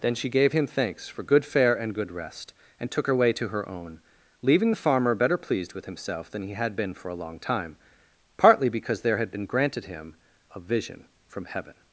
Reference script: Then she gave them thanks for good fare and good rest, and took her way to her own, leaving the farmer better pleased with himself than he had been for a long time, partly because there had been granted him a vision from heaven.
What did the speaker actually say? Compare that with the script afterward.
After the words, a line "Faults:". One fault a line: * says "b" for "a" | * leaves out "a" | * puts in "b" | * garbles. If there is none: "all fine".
Then she gave him thanks for good fare and good rest, and took her way to her own, leaving the farmer better pleased with himself than he had been for a long time, partly because there had been granted him a vision from heaven.
Faults:
* says "him" for "them"